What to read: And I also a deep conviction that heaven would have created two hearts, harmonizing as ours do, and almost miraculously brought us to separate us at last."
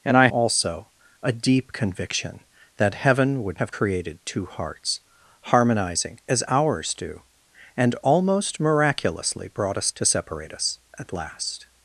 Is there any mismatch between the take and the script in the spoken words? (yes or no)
no